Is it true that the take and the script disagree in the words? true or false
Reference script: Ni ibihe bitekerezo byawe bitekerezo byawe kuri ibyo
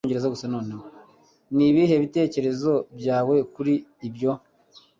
true